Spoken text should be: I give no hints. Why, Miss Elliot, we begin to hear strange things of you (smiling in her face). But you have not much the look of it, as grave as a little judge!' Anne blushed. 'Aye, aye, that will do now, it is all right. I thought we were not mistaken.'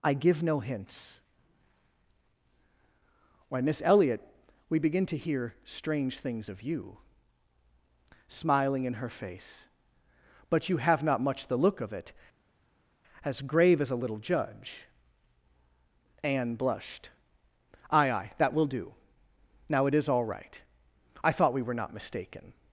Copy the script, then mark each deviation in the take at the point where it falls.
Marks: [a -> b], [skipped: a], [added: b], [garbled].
I give no hints. Why, Miss Elliot, we begin to hear strange things of you (smiling in her face). But you have not much the look of it, as grave as a little judge!' Anne blushed. 'Aye, aye, that will do now, it is all right. I thought we were not mistaken.'